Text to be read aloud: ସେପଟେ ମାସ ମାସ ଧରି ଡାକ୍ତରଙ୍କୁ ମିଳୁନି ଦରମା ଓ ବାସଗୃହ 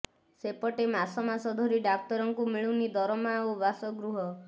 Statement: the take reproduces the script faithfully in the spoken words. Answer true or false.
true